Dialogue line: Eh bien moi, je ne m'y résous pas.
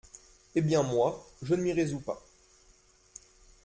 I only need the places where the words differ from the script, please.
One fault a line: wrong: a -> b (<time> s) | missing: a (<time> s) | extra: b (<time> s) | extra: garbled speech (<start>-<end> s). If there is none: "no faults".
no faults